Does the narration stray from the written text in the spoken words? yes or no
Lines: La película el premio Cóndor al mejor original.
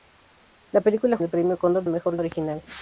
no